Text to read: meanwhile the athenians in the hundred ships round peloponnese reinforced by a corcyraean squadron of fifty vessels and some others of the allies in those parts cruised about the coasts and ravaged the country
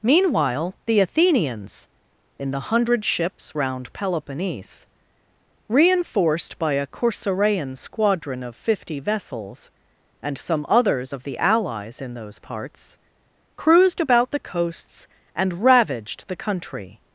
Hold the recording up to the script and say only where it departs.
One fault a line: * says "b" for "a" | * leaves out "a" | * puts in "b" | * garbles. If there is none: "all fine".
all fine